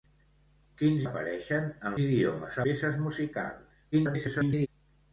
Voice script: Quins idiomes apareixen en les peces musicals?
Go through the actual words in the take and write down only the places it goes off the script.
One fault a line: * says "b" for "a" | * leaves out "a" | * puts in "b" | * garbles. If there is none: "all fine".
* leaves out "idiomes"
* says "idiomes" for "les"
* garbles